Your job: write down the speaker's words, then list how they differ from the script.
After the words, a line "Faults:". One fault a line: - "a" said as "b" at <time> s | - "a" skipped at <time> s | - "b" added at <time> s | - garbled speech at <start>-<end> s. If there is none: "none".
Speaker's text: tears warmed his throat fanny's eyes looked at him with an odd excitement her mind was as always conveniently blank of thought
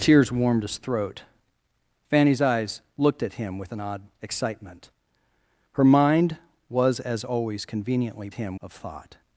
tears warmed his throat fanny's eyes looked at him with an odd excitement her mind was as always conveniently him of thought
Faults:
- "blank" said as "him" at 8.3 s